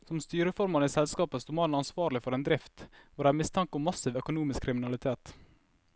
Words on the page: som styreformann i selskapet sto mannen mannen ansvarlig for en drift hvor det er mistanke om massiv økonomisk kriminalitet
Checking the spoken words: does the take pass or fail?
fail